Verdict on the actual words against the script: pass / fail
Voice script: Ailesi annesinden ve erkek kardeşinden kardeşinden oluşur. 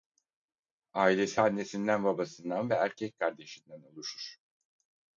fail